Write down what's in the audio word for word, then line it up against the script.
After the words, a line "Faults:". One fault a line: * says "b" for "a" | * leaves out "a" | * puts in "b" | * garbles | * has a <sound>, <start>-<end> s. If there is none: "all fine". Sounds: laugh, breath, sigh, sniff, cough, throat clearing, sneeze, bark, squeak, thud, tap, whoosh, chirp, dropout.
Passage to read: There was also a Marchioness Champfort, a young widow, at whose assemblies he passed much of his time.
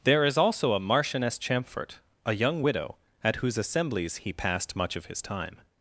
There is also a Marchioness Champfort, a young widow, at whose assemblies he passed much of his time.
Faults:
* says "is" for "was"